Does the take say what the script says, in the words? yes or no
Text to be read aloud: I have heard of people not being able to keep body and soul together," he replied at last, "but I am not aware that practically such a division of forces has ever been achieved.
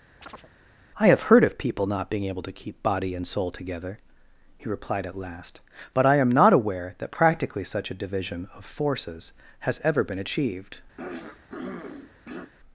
yes